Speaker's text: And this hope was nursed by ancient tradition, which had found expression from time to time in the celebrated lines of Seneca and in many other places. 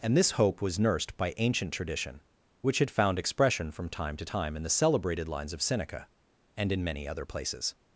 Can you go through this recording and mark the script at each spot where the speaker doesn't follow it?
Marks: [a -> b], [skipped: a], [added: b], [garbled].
And this hope was nursed by ancient tradition, which had found expression from time to time in the celebrated lines of Seneca and in many other places.